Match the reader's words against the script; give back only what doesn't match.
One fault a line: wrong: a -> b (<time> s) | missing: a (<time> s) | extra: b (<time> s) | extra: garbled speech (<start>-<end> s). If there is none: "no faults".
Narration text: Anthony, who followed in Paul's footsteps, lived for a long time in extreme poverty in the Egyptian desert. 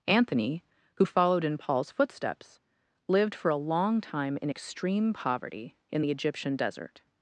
no faults